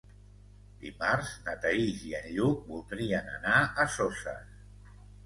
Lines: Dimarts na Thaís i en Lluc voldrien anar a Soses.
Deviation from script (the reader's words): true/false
false